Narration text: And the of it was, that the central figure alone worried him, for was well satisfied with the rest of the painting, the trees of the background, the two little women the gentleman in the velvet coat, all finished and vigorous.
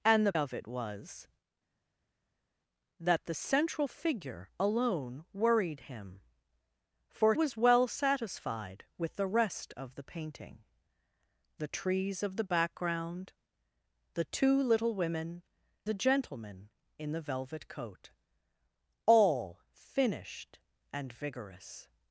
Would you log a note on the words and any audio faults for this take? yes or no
no